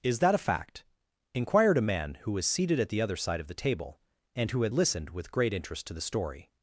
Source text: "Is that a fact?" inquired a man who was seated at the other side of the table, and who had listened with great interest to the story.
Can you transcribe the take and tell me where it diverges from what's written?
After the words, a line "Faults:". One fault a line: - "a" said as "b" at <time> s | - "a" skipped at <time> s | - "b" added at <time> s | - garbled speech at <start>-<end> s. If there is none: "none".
"Is that a fact?" inquired a man who was seated at the other side of the table, and who had listened with great interest to the story.
Faults:
none